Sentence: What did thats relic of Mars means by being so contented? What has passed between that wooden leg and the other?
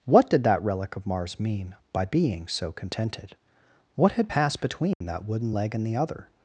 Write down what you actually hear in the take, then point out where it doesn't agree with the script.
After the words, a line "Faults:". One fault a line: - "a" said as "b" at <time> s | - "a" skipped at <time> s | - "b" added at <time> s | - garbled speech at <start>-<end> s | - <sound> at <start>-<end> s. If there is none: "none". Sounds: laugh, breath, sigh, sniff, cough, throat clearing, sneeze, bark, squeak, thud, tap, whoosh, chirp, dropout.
What did that relic of Mars mean by being so contented? What had passed between that wooden leg and the other?
Faults:
- "thats" said as "that" at 0.5 s
- "means" said as "mean" at 1.4 s
- "has" said as "had" at 4.1 s
- dropout at 4.9-5.0 s